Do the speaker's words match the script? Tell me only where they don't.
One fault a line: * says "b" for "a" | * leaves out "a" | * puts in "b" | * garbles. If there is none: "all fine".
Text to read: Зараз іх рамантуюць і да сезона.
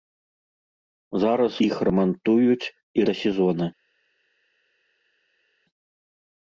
all fine